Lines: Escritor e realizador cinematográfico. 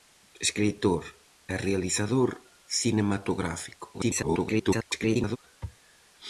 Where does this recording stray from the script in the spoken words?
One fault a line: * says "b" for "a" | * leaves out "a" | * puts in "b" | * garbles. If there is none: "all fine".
* garbles